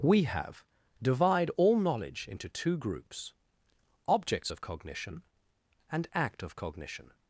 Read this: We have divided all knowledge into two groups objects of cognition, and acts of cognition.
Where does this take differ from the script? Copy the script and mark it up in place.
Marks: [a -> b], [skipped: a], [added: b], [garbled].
We have [divided -> divide] all knowledge into two groups objects of cognition, and [acts -> act] of cognition.